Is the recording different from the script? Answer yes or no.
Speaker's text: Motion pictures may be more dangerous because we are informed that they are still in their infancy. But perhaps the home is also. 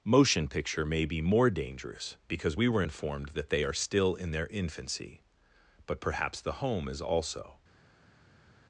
yes